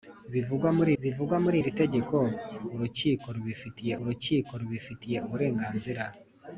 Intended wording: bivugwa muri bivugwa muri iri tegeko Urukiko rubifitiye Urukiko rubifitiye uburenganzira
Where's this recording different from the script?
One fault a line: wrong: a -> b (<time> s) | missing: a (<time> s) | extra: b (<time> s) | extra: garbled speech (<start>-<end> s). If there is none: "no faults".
no faults